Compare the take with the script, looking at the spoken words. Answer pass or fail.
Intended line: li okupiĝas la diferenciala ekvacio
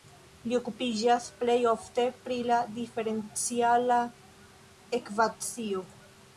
fail